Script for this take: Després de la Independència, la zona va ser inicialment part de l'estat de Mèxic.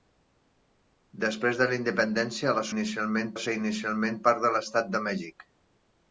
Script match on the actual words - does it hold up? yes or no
no